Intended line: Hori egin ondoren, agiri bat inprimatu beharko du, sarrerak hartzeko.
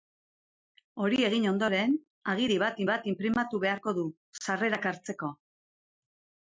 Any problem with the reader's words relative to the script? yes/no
yes